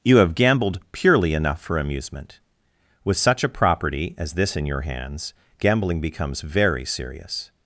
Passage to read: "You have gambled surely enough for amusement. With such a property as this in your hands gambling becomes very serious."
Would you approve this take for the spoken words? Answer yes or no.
no